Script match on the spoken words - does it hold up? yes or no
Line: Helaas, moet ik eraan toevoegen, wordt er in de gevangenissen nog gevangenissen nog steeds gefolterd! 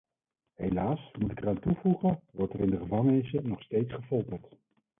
no